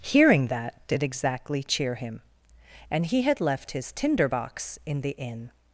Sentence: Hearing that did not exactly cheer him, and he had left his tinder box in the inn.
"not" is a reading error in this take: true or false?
true